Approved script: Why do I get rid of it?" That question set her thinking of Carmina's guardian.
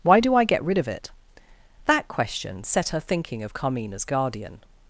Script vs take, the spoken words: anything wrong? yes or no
no